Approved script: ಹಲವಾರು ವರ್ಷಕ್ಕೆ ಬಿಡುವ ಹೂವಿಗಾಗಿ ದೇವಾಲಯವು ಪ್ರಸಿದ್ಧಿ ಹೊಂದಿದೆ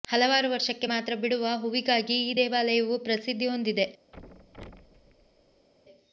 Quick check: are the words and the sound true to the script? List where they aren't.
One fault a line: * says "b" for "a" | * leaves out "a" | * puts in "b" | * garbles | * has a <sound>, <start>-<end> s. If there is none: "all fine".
* puts in "ಮಾತ್ರ"
* puts in "ಈ"
* has a thud, 4.1-5.7 s